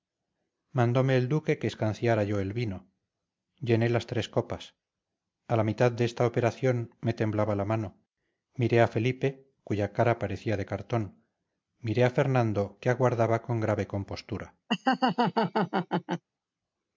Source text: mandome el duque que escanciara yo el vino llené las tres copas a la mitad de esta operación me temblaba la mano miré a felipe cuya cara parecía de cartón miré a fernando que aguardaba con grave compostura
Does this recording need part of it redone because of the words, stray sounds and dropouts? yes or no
yes